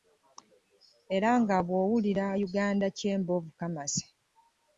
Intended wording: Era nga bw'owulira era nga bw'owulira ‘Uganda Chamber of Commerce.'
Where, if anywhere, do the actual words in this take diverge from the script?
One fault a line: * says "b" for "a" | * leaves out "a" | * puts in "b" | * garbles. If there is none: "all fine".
* leaves out "era nga bw'owulira"